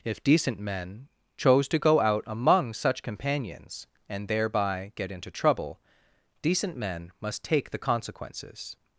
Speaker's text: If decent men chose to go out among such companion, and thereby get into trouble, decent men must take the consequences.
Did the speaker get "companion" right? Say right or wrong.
wrong